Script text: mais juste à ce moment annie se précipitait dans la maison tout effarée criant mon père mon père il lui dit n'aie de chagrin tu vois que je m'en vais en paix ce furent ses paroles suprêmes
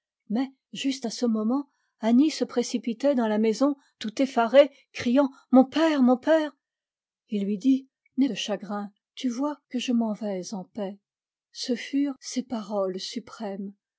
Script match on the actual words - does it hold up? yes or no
yes